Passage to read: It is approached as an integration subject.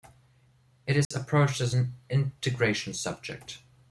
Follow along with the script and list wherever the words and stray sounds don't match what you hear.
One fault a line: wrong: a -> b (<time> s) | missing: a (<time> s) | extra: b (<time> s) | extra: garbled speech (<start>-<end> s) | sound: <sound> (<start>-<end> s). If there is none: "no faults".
sound: dropout (1.0-1.1 s)